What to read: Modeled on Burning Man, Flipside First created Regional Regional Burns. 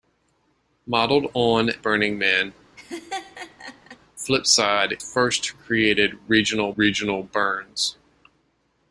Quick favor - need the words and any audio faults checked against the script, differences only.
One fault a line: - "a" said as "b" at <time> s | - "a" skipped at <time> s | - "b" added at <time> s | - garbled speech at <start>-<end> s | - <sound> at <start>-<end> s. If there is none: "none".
- laugh at 2.8-4.0 s